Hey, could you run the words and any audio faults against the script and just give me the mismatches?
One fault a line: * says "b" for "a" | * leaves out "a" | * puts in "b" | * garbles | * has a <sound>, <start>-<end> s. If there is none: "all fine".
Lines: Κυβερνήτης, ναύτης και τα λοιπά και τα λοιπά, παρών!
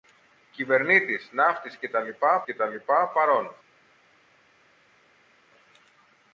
all fine